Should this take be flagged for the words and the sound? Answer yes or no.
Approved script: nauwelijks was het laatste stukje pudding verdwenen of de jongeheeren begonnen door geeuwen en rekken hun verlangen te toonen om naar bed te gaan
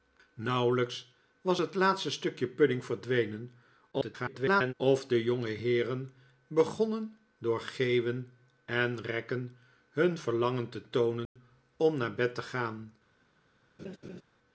yes